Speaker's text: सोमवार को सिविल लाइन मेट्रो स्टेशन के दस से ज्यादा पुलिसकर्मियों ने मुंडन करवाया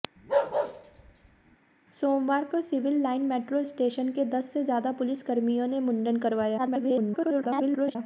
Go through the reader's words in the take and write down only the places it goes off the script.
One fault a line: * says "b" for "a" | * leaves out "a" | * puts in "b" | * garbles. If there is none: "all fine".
* garbles